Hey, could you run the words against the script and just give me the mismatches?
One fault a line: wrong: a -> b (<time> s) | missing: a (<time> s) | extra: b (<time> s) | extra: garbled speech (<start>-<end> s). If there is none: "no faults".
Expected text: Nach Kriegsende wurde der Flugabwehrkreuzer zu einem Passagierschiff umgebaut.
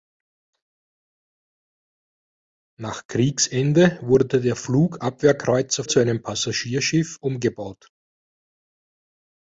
no faults